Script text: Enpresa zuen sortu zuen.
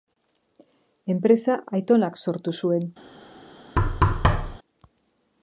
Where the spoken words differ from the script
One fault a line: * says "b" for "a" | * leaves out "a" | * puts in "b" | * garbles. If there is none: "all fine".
* says "aitonak" for "zuen"